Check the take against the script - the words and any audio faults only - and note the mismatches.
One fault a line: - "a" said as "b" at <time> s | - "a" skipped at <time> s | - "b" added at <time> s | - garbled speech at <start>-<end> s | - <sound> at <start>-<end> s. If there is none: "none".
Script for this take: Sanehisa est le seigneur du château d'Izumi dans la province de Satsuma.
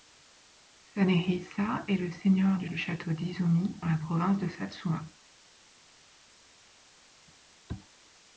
- "du" added at 2.6 s
- "dans" skipped at 3.8 s